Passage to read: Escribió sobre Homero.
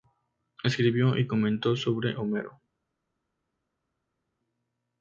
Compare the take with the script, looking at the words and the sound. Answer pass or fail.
fail